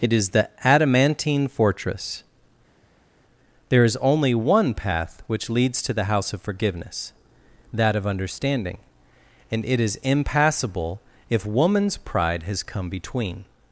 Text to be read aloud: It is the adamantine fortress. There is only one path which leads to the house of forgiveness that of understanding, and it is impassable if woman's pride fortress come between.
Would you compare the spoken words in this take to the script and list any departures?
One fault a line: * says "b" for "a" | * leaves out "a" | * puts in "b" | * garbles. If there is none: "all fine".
* says "has" for "fortress"